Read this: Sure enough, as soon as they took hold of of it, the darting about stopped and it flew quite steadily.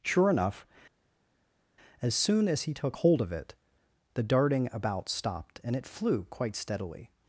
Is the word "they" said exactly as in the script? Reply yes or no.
no